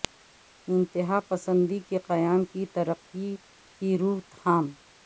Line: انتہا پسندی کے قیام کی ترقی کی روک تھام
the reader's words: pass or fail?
pass